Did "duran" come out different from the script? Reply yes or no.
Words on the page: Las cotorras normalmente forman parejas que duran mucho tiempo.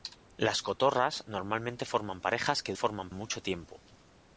yes